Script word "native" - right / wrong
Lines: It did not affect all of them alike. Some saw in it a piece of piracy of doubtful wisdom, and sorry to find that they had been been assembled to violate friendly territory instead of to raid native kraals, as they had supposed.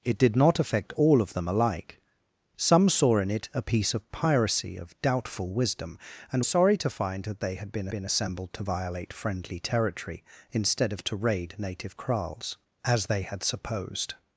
right